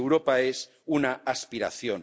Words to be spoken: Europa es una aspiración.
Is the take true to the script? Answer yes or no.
yes